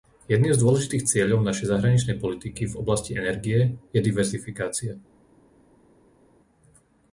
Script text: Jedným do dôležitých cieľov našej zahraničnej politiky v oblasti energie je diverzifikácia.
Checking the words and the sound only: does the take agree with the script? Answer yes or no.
no